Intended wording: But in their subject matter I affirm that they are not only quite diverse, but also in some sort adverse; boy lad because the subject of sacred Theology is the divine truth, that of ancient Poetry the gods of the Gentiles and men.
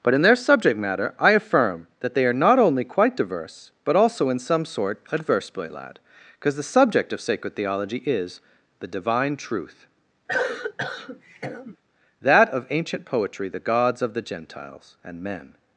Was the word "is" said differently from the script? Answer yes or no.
no